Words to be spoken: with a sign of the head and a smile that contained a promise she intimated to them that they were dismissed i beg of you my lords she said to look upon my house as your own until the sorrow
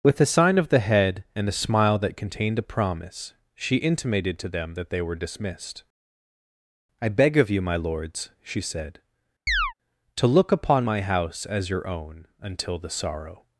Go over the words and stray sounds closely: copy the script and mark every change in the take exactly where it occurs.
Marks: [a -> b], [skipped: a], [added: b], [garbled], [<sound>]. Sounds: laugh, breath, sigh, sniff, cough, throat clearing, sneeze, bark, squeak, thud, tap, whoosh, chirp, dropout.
with a sign of the head and a smile that contained a promise she intimated to them that they were dismissed i beg of you my lords she said [chirp] to look upon my house as your own until the sorrow